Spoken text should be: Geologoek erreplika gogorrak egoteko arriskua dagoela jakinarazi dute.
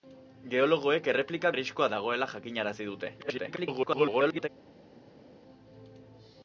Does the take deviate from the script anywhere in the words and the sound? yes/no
yes